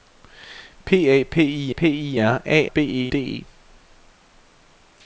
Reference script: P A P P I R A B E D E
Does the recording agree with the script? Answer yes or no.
yes